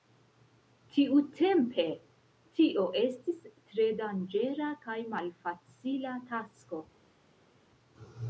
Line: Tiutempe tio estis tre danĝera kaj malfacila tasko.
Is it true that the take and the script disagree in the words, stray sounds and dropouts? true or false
false